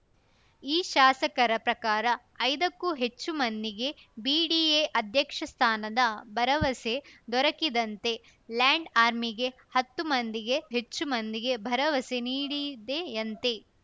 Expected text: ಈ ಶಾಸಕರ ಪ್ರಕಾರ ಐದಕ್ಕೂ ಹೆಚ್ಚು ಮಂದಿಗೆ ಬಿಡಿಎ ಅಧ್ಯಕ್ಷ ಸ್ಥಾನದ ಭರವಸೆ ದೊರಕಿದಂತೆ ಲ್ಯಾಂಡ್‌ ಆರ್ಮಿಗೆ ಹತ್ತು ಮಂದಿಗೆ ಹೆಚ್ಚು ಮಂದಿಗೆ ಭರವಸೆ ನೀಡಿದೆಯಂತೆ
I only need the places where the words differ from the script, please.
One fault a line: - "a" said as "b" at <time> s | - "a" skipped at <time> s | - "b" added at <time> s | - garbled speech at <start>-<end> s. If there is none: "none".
none